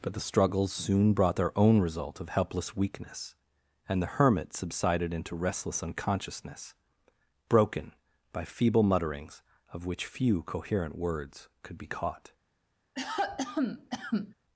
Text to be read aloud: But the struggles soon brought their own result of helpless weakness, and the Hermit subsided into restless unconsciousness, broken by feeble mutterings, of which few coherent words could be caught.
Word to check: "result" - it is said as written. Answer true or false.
true